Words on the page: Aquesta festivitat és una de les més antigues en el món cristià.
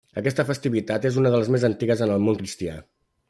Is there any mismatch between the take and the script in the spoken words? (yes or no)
no